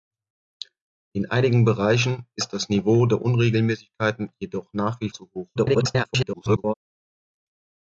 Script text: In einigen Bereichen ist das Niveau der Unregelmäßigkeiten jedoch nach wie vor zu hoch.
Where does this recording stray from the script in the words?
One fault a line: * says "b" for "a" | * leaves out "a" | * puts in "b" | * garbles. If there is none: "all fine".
* leaves out "vor"
* garbles